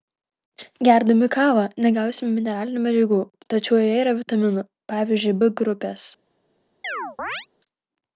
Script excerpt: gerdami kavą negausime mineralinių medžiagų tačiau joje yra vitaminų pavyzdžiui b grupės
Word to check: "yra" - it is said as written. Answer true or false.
true